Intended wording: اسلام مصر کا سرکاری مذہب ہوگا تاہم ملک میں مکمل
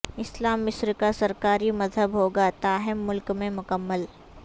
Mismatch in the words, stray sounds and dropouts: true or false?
false